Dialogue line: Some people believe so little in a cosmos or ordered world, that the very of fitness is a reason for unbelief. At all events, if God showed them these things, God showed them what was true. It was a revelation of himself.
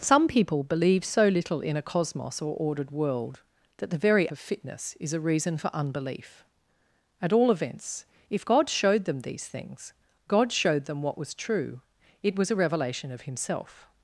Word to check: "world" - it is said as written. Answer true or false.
true